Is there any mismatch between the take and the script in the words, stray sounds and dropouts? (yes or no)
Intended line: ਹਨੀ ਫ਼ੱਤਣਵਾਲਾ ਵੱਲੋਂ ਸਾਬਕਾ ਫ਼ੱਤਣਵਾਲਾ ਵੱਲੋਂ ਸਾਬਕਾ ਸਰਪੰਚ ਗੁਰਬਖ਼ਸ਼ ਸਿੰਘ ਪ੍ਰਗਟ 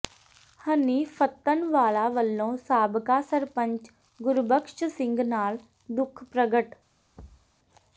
yes